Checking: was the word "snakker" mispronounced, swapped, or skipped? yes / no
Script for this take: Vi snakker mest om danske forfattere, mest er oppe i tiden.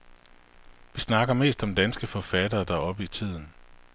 no